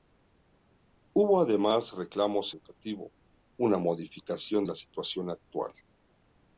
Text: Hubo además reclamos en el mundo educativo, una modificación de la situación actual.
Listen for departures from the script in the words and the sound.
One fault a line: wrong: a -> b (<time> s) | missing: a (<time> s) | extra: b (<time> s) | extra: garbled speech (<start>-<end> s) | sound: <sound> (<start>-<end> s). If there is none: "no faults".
missing: en el mundo (2.5 s)
missing: de (4.7 s)